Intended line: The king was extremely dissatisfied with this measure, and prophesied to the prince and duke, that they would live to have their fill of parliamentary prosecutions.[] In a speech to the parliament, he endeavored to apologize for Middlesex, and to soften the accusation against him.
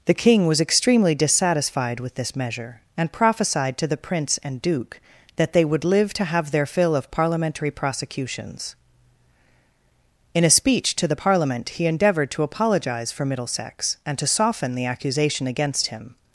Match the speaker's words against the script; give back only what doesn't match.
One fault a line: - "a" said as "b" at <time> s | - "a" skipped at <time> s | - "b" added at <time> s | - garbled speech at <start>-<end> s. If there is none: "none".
none